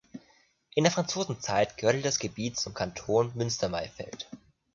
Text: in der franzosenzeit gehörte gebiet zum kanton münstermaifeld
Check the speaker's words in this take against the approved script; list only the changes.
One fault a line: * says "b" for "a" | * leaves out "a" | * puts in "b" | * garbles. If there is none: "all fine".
* puts in "das"